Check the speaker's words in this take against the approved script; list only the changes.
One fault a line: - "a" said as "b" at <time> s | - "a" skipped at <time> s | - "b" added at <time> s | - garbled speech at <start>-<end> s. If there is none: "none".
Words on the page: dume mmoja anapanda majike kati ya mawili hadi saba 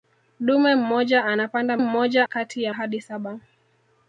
- "majike" said as "mmoja" at 1.8 s
- "mawili" skipped at 2.7 s